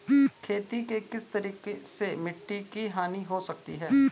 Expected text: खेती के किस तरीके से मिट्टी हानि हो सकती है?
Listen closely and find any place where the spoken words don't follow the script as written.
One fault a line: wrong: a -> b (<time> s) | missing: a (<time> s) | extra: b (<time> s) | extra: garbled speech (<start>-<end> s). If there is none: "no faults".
extra: की (2.7 s)